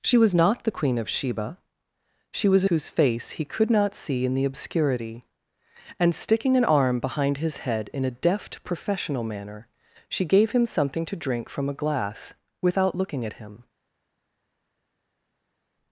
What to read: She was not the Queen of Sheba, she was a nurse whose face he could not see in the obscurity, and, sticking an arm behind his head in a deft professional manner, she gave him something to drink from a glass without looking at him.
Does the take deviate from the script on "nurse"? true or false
true